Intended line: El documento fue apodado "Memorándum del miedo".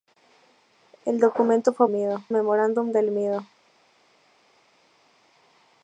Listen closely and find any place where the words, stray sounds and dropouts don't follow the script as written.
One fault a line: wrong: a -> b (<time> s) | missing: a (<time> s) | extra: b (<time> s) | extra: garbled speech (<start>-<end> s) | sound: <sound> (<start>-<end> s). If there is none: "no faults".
wrong: apodado -> miedo (1.9 s)